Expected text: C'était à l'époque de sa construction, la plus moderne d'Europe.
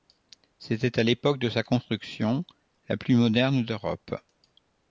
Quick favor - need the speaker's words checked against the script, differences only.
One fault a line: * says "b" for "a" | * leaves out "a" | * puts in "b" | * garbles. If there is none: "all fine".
all fine